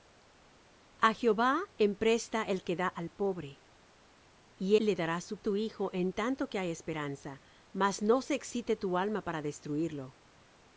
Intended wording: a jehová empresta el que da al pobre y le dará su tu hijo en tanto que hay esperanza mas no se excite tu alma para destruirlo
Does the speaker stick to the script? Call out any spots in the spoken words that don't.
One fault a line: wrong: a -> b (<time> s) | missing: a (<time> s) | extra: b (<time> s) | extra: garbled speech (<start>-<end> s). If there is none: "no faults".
no faults